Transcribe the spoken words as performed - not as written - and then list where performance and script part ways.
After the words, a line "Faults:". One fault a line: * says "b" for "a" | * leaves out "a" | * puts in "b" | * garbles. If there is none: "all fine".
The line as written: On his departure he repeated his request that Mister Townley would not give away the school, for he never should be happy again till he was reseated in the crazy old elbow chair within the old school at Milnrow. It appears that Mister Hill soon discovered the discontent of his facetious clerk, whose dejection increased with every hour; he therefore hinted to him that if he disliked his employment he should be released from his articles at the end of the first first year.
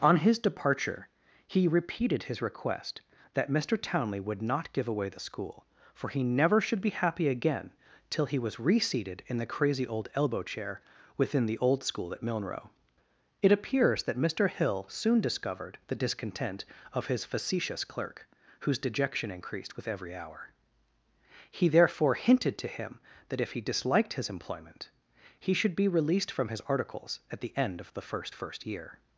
On his departure he repeated his request that Mister Townley would not give away the school, for he never should be happy again till he was reseated in the crazy old elbow chair within the old school at Milnrow. It appears that Mister Hill soon discovered the discontent of his facetious clerk, whose dejection increased with every hour; he therefore hinted to him that if he disliked his employment he should be released from his articles at the end of the first first year.
Faults:
all fine